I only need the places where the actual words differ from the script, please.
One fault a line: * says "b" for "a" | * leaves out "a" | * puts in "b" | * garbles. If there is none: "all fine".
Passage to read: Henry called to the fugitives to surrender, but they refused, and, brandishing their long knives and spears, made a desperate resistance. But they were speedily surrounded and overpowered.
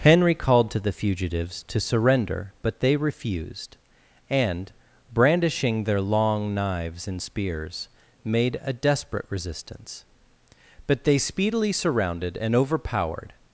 * leaves out "were"